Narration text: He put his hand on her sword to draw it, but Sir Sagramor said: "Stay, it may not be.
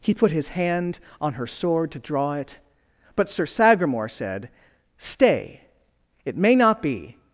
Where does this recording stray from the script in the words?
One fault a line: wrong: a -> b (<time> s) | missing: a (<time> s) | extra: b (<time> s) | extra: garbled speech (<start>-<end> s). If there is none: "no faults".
no faults